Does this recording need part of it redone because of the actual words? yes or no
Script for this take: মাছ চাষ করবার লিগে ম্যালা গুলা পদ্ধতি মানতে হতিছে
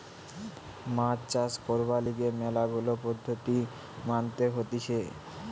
no